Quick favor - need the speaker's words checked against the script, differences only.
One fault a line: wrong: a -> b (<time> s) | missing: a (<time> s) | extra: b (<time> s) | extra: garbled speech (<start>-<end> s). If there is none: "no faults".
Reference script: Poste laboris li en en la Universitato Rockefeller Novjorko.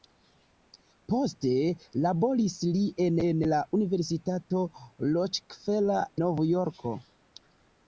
no faults